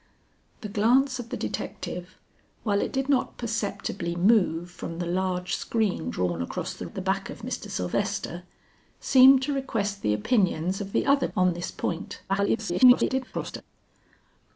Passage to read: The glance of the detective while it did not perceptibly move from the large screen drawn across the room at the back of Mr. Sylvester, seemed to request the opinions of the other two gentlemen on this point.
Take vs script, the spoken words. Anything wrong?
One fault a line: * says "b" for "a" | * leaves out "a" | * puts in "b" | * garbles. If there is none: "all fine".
* leaves out "room"
* leaves out "two gentlemen"
* garbles